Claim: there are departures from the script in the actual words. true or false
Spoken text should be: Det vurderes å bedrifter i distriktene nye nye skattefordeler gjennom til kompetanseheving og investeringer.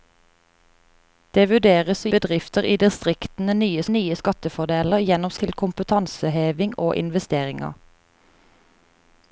false